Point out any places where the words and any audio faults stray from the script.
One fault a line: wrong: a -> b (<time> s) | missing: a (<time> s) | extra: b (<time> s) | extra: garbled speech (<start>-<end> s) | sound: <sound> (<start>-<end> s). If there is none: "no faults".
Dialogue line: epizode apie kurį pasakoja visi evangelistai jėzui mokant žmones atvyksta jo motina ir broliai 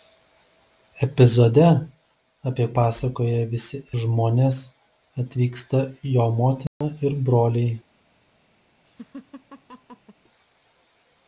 missing: kurį (2.6 s)
missing: evangelistai jėzui mokant (3.8 s)
sound: dropout (6.7-6.8 s)
sound: laugh (8.8-10.2 s)